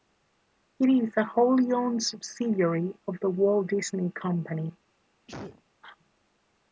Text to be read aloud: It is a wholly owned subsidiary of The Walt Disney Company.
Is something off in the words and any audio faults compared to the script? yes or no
yes